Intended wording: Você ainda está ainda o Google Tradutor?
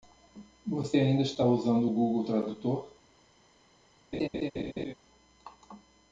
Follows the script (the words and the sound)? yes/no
no